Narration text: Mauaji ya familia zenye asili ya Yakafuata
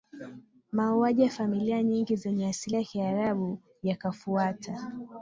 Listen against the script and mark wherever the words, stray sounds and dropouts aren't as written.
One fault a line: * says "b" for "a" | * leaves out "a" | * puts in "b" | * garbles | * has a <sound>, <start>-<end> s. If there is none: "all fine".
* puts in "nyingi"
* puts in "Kiarabu"